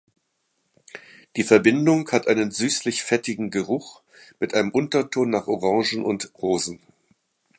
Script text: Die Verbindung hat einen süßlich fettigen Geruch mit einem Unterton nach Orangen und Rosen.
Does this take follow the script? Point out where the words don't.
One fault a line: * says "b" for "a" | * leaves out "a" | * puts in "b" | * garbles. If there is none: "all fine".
all fine